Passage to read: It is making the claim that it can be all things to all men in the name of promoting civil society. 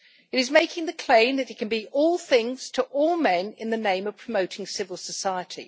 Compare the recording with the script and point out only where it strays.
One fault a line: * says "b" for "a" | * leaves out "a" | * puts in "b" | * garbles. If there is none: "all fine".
all fine